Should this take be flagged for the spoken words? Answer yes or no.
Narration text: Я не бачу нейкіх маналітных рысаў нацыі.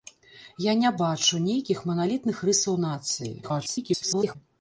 yes